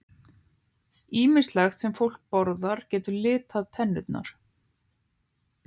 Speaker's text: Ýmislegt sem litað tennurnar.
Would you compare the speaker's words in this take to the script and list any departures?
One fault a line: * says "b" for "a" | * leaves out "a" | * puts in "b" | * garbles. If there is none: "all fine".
* puts in "fólk borðar getur"